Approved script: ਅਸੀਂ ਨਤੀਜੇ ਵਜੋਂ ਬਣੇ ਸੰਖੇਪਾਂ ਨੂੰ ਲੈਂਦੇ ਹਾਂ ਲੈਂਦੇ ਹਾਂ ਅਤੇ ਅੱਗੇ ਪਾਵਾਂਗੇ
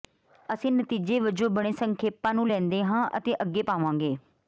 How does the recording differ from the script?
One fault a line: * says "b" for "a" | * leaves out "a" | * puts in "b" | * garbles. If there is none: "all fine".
* leaves out "ਲੈਂਦੇ ਹਾਂ"